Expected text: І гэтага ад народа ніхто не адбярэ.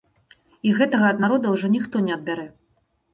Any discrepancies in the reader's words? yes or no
yes